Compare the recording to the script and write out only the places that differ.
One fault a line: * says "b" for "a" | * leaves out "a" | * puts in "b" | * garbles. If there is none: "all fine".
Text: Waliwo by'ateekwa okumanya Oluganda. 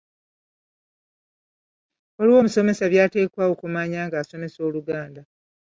* puts in "omusomesa"
* puts in "ng'asomesa"